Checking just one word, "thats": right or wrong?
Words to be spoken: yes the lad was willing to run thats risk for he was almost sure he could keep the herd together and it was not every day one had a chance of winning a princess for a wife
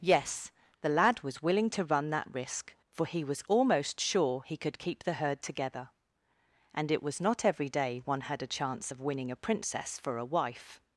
wrong